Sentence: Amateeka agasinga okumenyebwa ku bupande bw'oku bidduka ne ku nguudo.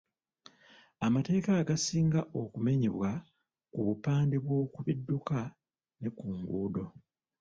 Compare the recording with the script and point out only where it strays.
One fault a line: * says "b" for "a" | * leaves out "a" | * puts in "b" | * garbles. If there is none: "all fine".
all fine